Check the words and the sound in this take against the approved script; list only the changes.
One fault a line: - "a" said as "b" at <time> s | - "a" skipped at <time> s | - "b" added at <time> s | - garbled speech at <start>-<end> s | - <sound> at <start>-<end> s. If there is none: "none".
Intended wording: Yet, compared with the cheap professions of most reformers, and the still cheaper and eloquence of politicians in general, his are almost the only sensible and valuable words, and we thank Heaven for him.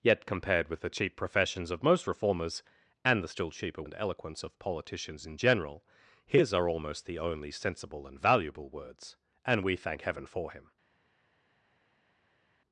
none